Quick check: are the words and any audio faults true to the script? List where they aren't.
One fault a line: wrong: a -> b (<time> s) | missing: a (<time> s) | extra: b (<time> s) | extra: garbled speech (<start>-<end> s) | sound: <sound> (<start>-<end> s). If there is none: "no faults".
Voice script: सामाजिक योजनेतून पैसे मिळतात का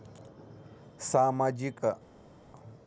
missing: योजनेतून पैसे मिळतात (1.8 s)